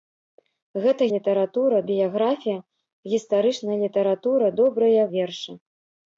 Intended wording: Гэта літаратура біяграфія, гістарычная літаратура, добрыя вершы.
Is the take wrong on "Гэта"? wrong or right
right